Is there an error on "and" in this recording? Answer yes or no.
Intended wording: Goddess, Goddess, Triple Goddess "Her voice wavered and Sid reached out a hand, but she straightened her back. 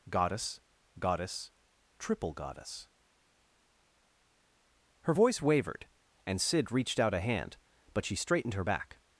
no